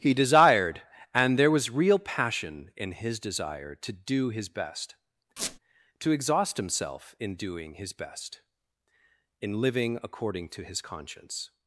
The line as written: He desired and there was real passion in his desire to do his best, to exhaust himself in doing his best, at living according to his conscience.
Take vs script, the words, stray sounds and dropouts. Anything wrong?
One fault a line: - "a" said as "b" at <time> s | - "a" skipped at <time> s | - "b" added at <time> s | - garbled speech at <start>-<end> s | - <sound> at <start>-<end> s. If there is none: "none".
- squeak at 5.4-5.6 s
- "at" said as "in" at 9.4 s